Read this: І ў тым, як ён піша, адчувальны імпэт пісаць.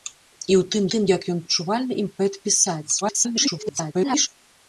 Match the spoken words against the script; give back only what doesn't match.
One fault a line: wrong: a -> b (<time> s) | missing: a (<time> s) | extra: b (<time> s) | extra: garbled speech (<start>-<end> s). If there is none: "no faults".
extra: тым (0.9 s)
missing: піша (1.4 s)
extra: garbled speech (3.0-4.3 s)